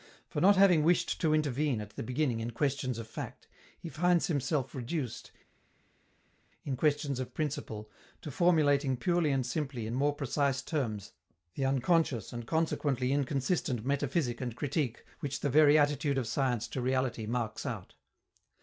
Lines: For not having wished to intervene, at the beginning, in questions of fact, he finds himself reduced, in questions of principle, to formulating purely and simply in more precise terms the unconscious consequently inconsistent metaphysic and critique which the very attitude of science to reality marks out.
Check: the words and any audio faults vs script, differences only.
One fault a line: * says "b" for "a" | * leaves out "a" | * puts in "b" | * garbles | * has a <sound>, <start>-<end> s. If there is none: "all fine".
* puts in "and"